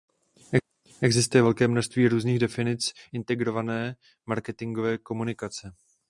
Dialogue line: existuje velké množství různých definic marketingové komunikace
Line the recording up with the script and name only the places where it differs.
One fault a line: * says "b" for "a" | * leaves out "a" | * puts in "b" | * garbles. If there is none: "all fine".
* puts in "integrované"